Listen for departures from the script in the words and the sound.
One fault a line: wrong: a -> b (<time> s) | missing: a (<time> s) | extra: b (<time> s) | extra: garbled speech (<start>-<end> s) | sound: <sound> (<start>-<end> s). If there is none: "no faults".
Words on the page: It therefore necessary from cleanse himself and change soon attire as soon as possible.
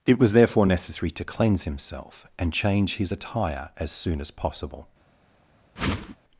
extra: was (0.2 s)
wrong: from -> to (1.1 s)
wrong: soon -> his (3.0 s)
sound: whoosh (5.8-6.2 s)